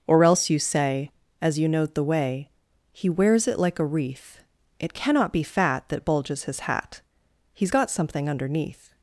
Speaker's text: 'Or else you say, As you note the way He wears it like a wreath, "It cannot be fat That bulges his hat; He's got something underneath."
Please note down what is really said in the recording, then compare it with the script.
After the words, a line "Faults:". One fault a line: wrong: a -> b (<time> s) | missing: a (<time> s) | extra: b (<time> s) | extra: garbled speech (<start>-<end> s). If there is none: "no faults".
'Or else you say, As you note the way He wears it like a wreath, "It cannot be fat That bulges his hat; He's got something underneath."
Faults:
no faults